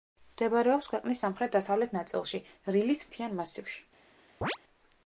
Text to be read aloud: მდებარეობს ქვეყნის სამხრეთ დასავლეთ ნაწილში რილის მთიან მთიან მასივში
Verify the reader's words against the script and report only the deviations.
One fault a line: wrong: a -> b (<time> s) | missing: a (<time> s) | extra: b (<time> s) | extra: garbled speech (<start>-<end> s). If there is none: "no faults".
missing: მთიან (3.4 s)